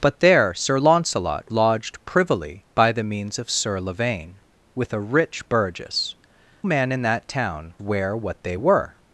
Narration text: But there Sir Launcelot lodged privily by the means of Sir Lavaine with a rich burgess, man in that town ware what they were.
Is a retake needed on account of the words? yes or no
no